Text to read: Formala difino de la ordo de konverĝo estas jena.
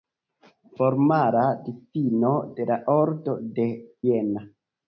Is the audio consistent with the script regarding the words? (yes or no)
no